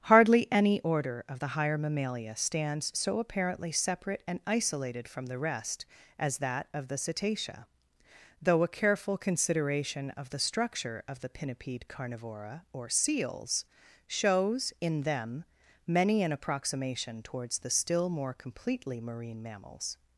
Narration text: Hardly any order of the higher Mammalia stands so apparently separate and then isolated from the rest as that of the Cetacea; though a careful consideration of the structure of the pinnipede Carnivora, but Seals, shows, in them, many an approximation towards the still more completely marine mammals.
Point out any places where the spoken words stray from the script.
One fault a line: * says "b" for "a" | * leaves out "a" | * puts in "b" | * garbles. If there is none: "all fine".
* leaves out "then"
* says "or" for "but"